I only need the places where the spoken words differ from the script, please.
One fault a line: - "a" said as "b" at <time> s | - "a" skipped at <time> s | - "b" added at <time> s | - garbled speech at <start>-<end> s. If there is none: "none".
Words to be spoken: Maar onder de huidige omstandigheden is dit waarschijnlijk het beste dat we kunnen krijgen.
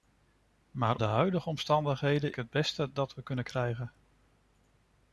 - "onder" skipped at 1.0 s
- "is dit waarschijnlijk" skipped at 2.3 s